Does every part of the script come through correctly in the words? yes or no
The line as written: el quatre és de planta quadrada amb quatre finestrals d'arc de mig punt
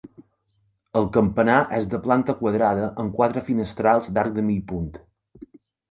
no